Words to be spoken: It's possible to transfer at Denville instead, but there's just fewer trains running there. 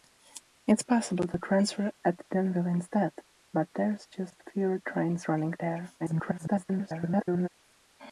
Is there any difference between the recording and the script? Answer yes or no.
yes